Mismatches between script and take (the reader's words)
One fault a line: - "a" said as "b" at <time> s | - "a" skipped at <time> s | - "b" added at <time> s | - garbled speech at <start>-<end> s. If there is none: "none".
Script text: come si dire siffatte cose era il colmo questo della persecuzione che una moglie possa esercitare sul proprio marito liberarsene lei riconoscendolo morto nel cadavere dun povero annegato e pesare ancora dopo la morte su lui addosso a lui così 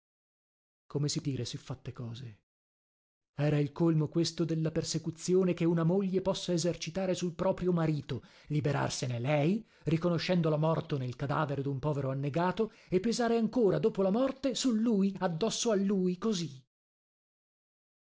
none